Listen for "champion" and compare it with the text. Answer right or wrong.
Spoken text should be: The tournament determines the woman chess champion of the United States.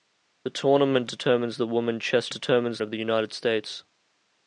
wrong